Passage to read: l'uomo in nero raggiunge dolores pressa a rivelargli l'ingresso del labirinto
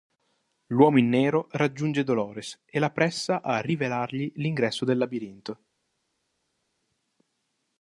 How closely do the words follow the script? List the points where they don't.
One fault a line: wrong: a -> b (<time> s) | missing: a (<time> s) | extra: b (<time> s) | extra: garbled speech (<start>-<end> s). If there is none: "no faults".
extra: e la (2.6 s)